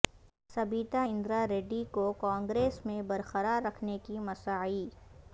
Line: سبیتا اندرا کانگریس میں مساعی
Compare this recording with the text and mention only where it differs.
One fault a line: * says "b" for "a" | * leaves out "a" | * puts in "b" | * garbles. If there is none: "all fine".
* puts in "ریڈی کو"
* puts in "برقرار رکھنے کی"